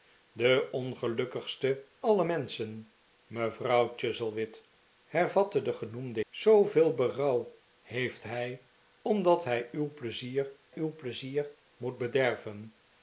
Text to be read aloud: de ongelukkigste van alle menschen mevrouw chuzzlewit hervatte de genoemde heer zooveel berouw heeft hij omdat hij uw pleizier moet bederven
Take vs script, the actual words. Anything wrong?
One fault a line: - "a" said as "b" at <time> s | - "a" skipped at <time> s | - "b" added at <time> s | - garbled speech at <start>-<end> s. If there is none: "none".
- "van" skipped at 1.9 s
- "heer" skipped at 6.2 s
- "uw pleizier" added at 10.7 s